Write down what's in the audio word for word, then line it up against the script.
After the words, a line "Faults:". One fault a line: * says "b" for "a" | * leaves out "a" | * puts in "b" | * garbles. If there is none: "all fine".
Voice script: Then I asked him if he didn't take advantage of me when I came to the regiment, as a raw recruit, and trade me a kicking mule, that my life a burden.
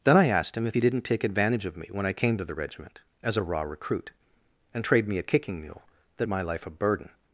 Then I asked him if he didn't take advantage of me when I came to the regiment, as a raw recruit, and trade me a kicking mule, that my life a burden.
Faults:
all fine